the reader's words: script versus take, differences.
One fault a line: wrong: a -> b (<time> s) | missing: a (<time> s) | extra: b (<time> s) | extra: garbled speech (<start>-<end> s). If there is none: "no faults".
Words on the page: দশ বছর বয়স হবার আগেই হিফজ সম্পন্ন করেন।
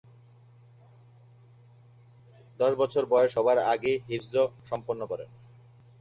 no faults